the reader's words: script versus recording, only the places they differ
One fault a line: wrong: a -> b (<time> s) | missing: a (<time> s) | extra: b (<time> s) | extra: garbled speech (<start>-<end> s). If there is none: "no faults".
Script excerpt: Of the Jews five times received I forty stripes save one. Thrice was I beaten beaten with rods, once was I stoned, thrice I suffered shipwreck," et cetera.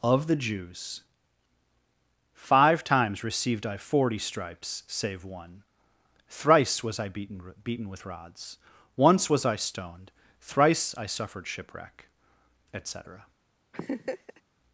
no faults